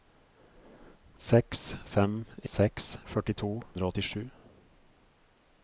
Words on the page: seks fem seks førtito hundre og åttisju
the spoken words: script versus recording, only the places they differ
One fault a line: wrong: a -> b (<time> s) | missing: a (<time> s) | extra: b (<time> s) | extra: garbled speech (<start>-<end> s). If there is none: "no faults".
no faults